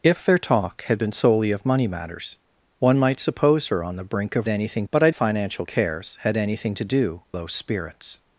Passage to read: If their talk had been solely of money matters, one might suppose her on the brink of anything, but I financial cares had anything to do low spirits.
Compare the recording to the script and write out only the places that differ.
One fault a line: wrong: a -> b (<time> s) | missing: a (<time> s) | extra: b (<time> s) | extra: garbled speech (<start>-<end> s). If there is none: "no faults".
no faults